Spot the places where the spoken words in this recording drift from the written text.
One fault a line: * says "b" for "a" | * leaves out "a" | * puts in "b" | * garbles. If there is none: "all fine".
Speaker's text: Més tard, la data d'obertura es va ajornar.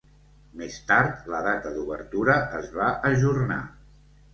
all fine